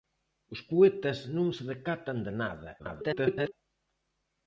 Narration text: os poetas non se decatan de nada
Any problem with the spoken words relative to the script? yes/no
yes